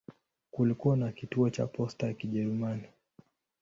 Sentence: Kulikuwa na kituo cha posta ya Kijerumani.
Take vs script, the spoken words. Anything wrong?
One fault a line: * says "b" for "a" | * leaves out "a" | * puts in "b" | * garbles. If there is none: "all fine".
all fine